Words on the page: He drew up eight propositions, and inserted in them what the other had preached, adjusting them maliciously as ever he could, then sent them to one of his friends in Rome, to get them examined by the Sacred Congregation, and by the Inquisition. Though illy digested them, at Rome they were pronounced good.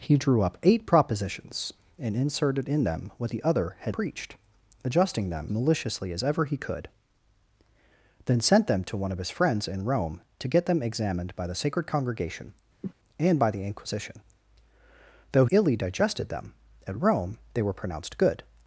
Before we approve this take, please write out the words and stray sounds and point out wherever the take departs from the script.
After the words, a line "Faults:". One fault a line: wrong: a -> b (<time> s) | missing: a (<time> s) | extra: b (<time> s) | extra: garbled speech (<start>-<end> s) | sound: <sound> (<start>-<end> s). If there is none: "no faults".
He drew up eight propositions, and inserted in them what the other had preached, adjusting them maliciously as ever he could, then sent them to one of his friends in Rome, to get them examined by the Sacred Congregation, and by the Inquisition. Though illy digested them, at Rome they were pronounced good.
Faults:
sound: cough (12.8-12.9 s)